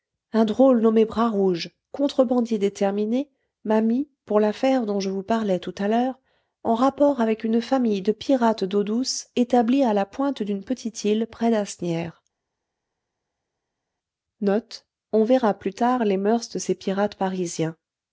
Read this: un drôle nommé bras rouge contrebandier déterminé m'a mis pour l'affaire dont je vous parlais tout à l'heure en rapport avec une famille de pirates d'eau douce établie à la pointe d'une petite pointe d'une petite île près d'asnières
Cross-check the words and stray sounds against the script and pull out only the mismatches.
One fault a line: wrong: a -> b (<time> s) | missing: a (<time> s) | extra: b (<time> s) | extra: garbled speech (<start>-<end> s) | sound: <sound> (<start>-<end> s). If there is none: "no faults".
missing: pointe d'une petite (11.0 s)